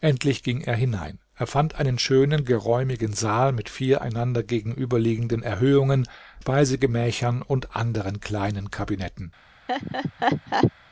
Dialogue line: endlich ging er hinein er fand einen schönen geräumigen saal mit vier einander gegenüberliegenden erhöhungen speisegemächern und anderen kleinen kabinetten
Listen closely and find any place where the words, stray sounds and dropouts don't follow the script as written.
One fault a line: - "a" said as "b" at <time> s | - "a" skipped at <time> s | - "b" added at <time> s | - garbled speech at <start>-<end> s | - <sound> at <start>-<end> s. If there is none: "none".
- laugh at 9.7-10.7 s